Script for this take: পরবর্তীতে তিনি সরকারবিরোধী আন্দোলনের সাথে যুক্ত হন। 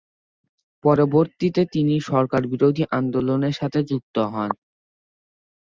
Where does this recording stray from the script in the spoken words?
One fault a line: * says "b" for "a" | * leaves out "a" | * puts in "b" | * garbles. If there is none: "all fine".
all fine